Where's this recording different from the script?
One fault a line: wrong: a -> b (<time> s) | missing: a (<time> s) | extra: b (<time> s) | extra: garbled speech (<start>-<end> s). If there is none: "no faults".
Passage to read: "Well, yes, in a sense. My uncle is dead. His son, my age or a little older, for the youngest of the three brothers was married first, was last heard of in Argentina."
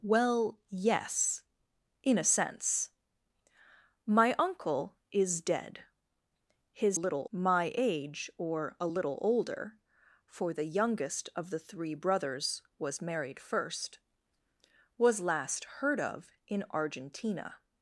wrong: son -> little (6.9 s)